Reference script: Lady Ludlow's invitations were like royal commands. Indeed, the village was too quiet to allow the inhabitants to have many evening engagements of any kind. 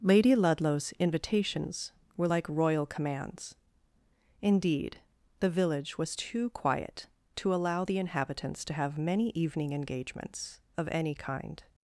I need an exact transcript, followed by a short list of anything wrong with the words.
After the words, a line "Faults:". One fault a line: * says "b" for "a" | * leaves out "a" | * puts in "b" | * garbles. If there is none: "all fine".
Lady Ludlow's invitations were like royal commands. Indeed, the village was too quiet to allow the inhabitants to have many evening engagements of any kind.
Faults:
all fine